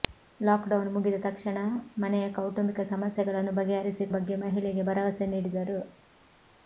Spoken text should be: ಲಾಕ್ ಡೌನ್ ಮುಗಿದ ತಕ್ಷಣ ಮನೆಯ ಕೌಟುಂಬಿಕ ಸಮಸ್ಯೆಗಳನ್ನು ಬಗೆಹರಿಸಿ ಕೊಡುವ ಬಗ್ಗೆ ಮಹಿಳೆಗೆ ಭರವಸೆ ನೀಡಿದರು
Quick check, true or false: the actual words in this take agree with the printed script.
false